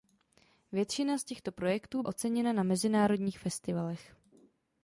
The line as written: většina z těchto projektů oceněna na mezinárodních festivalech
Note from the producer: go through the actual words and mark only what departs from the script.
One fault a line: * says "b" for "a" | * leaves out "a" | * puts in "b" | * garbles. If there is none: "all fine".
all fine